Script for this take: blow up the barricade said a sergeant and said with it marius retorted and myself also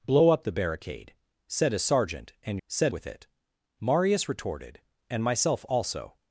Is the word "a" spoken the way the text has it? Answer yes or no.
yes